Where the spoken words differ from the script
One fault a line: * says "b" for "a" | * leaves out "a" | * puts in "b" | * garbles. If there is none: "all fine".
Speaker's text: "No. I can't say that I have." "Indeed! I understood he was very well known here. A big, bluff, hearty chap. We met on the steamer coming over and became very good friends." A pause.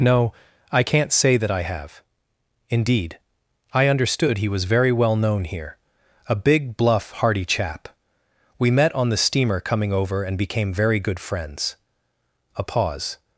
all fine